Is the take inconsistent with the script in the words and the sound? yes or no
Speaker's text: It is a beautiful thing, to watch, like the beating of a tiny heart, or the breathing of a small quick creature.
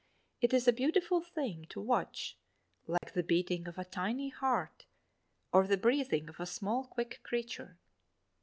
yes